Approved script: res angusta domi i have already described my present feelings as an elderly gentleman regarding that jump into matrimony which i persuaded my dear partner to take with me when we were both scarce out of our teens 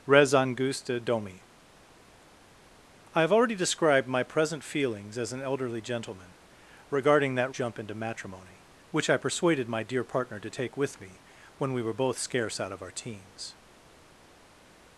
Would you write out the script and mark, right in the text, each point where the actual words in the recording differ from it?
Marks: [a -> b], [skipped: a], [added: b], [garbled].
res angusta domi i have already described my present feelings as an elderly gentleman regarding that jump into matrimony which i persuaded my dear partner to take with me when we were both scarce out of our teens